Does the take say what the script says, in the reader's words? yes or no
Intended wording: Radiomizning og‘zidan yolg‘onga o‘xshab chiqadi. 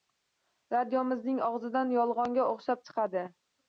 yes